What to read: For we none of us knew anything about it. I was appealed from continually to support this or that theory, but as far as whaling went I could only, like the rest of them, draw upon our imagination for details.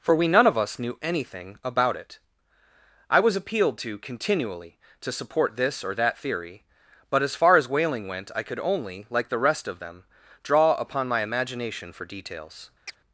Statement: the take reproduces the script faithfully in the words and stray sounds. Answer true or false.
false